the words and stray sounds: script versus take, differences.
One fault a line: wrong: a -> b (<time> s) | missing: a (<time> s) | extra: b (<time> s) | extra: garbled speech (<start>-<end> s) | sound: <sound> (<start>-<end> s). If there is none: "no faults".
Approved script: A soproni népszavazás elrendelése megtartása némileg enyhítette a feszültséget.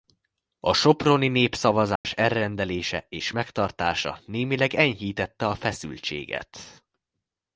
sound: dropout (2.0-2.0 s)
extra: és (3.1 s)